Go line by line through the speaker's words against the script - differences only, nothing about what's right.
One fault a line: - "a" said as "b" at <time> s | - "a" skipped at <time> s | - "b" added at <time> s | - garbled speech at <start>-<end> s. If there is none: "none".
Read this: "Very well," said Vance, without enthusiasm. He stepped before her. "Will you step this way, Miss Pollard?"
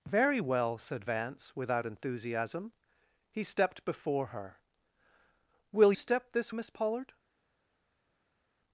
- "you" skipped at 5.9 s
- "way" skipped at 6.5 s